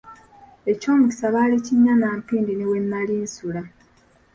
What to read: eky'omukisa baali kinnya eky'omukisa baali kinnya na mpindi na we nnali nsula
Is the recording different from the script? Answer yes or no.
yes